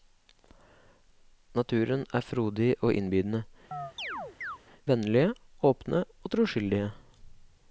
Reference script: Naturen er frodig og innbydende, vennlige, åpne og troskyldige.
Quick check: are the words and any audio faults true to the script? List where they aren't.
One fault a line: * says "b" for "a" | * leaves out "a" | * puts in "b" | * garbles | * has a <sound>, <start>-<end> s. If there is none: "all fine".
* has a chirp, 3.7-4.6 s